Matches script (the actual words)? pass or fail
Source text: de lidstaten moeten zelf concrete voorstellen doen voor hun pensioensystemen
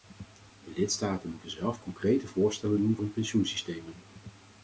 fail